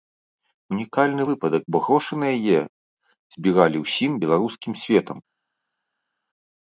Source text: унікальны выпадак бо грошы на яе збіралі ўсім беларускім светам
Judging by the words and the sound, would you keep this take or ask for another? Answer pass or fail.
pass